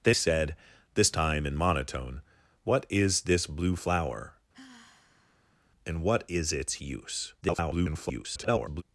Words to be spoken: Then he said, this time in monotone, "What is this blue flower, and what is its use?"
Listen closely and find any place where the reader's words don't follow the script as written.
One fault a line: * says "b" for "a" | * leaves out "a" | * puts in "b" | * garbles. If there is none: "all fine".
* leaves out "he"
* garbles